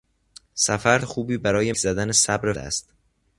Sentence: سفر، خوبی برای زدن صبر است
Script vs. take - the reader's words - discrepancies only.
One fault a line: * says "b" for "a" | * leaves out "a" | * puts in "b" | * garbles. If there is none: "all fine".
all fine